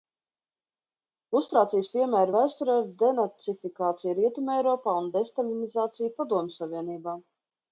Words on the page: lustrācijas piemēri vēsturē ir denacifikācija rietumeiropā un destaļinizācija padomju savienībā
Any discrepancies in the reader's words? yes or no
no